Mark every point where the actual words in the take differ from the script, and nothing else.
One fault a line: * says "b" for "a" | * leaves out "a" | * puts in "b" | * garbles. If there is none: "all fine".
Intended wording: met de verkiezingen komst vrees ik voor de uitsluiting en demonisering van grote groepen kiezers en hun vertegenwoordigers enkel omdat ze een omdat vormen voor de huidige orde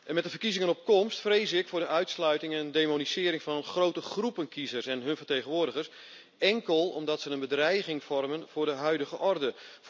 * puts in "op"
* says "bedreiging" for "omdat"